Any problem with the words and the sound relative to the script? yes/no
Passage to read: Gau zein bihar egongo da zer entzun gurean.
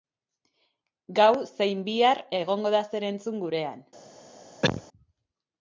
yes